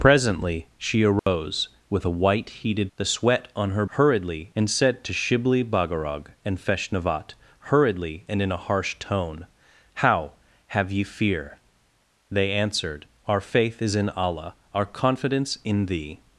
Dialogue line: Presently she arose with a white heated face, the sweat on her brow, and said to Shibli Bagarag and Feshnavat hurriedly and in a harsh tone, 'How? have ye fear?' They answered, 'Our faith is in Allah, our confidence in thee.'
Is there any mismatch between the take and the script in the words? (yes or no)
yes